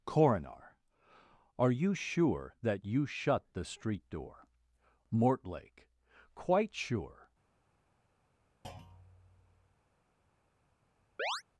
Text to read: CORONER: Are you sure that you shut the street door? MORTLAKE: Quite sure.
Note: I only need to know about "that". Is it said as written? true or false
true